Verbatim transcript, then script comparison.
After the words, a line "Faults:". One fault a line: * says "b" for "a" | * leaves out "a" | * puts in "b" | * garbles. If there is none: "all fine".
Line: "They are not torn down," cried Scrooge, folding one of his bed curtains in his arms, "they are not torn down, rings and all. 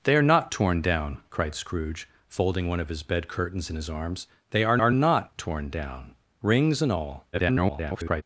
"They are not torn down," cried Scrooge, folding one of his bed curtains in his arms, "they are are not torn down, rings and all. [garbled]
Faults:
* puts in "are"
* garbles